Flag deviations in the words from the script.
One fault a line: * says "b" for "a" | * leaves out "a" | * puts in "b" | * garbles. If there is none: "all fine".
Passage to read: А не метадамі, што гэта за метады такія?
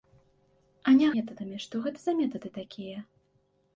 all fine